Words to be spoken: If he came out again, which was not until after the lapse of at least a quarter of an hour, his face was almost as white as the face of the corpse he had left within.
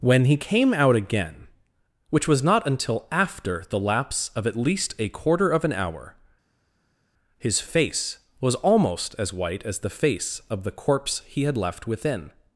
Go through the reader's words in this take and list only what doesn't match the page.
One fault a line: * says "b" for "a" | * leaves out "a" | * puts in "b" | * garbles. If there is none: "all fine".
* says "When" for "If"